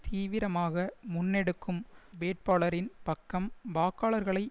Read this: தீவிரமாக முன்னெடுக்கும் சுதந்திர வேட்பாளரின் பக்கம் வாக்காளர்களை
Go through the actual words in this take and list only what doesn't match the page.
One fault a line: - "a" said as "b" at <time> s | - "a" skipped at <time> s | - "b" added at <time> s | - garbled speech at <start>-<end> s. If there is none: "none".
- "சுதந்திர" skipped at 1.8 s